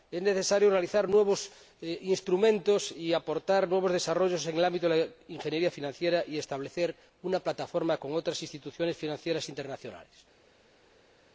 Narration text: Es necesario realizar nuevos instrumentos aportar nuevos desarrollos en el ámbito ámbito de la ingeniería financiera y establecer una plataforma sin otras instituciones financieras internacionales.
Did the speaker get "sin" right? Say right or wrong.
wrong